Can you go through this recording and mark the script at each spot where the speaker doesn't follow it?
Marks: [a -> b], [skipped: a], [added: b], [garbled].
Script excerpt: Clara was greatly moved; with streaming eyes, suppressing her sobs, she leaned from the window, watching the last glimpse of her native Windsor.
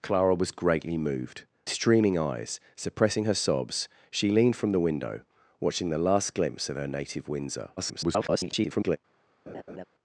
Clara was greatly moved; [skipped: with] streaming eyes, suppressing her sobs, she leaned from the window, watching the last glimpse of her native Windsor. [garbled]